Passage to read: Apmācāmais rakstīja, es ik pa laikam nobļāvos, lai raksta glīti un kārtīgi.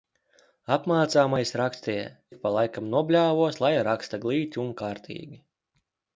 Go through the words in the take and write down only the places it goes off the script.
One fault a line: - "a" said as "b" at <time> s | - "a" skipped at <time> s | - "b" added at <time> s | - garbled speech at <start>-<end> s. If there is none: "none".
- "es" skipped at 2.1 s